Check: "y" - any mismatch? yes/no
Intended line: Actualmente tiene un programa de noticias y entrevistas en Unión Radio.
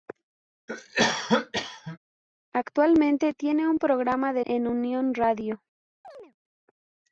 yes